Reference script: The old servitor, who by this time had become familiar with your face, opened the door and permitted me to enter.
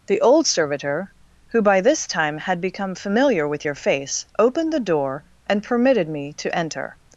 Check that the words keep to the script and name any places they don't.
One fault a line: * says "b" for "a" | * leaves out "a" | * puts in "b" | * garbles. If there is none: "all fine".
all fine